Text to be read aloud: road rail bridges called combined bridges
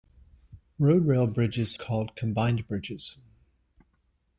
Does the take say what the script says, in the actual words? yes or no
yes